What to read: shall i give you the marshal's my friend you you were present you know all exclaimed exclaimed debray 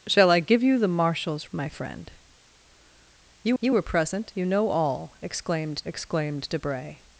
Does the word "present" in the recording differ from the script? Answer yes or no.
no